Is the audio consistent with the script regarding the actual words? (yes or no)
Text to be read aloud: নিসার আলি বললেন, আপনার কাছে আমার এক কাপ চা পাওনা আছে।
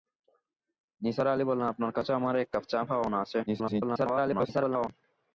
no